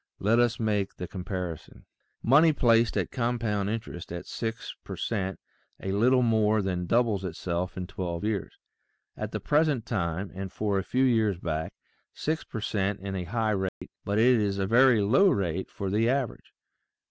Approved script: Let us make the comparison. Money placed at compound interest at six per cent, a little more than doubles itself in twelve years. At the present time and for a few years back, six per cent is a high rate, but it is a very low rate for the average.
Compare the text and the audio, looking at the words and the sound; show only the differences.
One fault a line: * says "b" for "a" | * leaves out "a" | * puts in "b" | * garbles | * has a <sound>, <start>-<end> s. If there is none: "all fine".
* has a dropout, 13.7-13.8 s